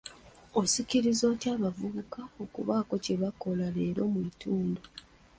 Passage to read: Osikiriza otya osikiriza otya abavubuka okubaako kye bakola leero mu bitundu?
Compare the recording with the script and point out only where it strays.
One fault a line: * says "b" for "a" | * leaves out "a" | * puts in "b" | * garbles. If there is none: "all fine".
* leaves out "osikiriza otya"